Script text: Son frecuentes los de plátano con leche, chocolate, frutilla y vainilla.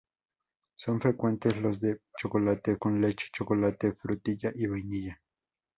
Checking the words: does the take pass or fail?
fail